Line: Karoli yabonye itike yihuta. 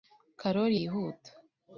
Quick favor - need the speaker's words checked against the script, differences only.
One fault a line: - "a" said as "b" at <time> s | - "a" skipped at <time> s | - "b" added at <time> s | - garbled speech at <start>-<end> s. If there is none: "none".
- "yabonye itike" skipped at 0.8 s